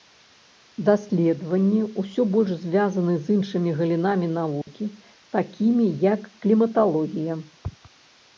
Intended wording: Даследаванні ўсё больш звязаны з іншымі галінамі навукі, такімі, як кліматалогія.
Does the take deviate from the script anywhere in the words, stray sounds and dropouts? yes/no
yes